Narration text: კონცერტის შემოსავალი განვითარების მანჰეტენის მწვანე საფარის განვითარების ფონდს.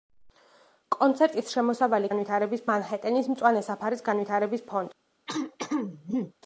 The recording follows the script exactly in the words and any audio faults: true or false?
false